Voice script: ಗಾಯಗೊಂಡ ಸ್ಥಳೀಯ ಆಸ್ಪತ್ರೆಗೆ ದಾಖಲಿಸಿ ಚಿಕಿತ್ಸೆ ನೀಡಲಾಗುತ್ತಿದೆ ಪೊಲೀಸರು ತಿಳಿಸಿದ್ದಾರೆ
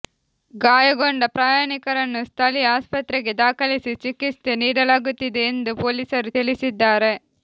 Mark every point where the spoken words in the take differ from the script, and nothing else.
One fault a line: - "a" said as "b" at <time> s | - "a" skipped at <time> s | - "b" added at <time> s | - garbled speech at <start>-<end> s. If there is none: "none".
- "ಪ್ರಯಾಣಿಕರನ್ನು" added at 1.3 s
- "ಎಂದು" added at 5.5 s